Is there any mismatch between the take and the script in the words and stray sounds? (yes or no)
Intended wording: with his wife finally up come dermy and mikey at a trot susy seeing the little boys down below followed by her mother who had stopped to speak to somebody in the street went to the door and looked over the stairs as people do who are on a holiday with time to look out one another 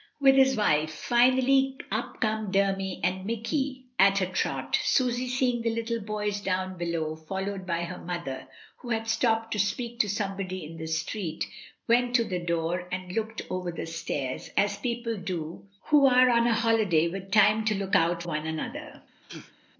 yes